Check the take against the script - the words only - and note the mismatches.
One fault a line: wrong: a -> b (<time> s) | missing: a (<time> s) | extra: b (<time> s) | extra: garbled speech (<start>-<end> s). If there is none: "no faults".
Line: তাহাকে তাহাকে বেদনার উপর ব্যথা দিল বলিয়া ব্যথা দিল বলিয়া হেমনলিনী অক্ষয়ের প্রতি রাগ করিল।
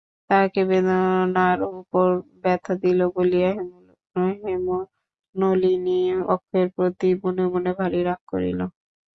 missing: তাহাকে (0.6 s)
wrong: ব্যথা দিল বলিয়া হেমনলিনী অক্ষয়ের প্রতি -> হেমনলিনী অক্ষয়ের প্রতি মনে মনে ভারি (4.4 s)